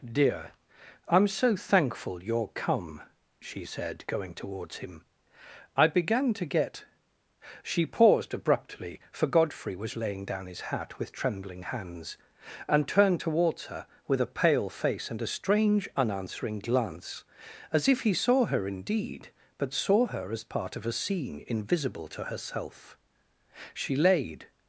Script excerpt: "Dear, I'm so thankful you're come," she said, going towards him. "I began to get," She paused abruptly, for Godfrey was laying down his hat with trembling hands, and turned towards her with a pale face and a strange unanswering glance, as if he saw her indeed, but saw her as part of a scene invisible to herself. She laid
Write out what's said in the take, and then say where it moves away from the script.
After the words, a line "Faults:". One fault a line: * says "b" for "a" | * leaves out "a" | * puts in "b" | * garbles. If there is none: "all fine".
"Dear, I'm so thankful you're come," she said, going towards him. "I began to get," She paused abruptly, for Godfrey was laying down his hat with trembling hands, and turned towards her with a pale face and a strange unanswering glance, as if he saw her indeed, but saw her as part of a scene invisible to herself. She laid
Faults:
all fine